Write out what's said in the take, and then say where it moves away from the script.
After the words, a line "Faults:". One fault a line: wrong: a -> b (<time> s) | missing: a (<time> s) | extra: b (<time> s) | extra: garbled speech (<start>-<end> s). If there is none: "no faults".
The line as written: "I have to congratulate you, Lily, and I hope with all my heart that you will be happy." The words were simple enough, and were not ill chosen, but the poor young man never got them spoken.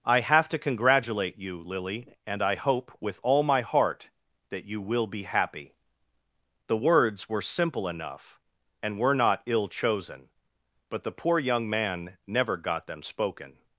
"I have to congratulate you, Lily, and I hope with all my heart that you will be happy." The words were simple enough, and were not ill chosen, but the poor young man never got them spoken.
Faults:
no faults